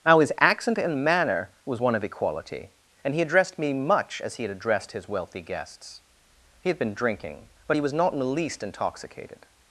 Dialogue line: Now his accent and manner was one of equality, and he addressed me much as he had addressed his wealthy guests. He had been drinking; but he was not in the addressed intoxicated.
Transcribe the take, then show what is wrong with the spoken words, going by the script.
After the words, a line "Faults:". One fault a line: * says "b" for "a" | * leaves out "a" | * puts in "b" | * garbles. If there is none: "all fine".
Now his accent and manner was one of equality, and he addressed me much as he had addressed his wealthy guests. He had been drinking; but he was not in the least intoxicated.
Faults:
* says "least" for "addressed"